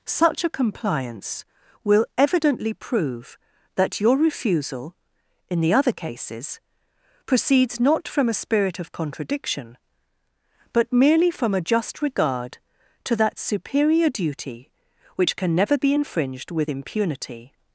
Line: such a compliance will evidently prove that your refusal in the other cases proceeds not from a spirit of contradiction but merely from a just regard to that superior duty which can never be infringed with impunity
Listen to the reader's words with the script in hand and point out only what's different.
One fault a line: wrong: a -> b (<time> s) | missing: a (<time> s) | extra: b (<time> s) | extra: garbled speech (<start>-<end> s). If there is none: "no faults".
no faults